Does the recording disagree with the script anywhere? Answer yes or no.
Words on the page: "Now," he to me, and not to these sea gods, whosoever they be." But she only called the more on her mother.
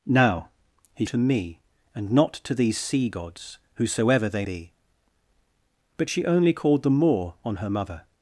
no